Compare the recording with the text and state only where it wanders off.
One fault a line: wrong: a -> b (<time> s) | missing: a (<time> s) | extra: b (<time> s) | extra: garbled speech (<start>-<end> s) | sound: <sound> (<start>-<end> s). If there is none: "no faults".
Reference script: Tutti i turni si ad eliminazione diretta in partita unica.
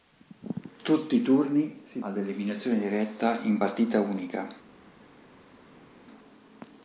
no faults